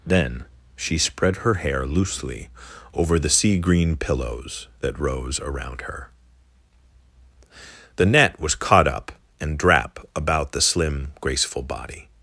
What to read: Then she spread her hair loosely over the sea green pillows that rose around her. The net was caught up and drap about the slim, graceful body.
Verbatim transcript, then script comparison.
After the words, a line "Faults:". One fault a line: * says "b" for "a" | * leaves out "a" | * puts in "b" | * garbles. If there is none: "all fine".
Then she spread her hair loosely over the sea green pillows that rose around her. The net was caught up and drap about the slim, graceful body.
Faults:
all fine